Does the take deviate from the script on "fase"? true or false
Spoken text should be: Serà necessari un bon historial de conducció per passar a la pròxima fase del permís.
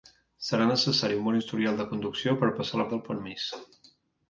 true